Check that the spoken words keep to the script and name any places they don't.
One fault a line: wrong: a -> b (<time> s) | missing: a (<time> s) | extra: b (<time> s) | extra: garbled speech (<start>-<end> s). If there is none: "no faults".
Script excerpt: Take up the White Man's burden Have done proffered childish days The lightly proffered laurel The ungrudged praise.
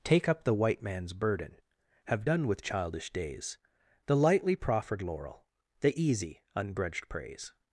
wrong: proffered -> with (2.5 s)
extra: easy (6.0 s)